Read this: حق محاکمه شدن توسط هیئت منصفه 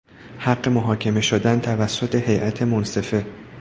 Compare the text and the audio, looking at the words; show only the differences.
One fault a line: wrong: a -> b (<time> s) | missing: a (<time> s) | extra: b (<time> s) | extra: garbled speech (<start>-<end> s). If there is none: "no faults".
no faults